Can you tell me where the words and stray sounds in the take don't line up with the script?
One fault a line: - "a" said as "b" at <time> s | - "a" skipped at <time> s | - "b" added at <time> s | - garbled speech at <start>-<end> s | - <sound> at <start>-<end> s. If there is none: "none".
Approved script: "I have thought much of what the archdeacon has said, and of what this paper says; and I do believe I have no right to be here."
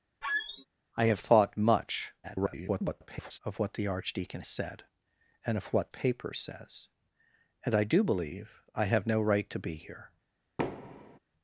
- squeak at 0.2-0.7 s
- garbled speech at 2.2-3.4 s
- "has" skipped at 4.4 s
- "this" skipped at 5.9 s
- thud at 10.6-11.2 s